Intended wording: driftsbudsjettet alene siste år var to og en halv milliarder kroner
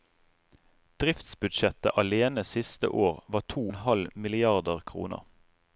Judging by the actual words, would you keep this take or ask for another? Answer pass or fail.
fail